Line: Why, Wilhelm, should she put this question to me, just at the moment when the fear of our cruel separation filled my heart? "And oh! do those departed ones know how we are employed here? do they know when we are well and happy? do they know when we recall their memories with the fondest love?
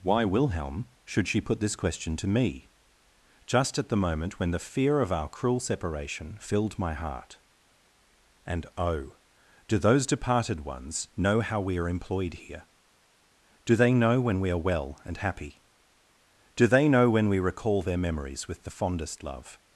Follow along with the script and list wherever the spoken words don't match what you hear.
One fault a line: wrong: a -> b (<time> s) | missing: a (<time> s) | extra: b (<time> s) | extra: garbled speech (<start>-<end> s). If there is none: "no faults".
no faults